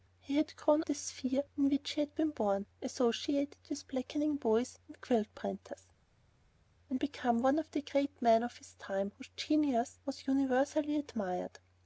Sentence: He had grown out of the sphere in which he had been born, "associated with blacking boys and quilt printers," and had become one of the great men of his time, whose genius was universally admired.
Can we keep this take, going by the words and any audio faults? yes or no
no